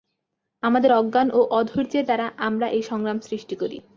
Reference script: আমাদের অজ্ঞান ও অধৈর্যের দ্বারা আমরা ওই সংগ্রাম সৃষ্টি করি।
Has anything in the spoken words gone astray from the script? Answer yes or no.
yes